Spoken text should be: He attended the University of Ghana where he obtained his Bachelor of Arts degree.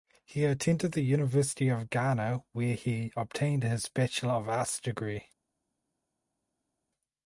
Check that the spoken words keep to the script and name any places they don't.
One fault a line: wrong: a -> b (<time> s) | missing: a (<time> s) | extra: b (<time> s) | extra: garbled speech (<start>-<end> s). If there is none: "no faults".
no faults